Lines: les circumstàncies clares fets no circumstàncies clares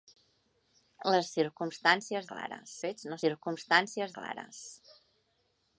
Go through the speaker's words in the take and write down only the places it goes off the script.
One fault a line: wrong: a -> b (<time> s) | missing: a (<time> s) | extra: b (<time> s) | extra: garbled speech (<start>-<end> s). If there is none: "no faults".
no faults